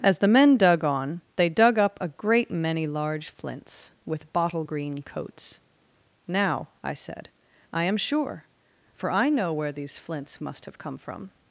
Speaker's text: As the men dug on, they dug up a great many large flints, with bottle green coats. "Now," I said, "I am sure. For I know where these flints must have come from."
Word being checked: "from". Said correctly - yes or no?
yes